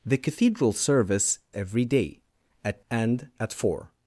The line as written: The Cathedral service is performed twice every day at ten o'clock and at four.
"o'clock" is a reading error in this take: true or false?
true